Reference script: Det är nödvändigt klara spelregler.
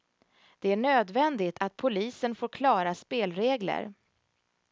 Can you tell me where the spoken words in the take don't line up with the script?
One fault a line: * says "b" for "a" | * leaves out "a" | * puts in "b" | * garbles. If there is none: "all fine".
* puts in "att polisen får"